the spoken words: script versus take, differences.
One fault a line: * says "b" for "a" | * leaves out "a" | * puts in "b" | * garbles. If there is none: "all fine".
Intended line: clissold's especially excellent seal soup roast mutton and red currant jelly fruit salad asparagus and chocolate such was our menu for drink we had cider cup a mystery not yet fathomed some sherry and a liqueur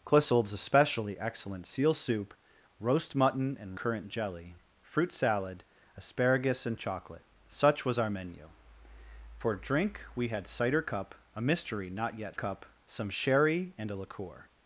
* leaves out "red"
* says "cup" for "fathomed"